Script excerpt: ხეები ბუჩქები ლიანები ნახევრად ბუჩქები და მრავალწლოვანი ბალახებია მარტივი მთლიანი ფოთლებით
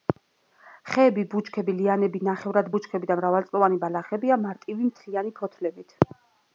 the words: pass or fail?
pass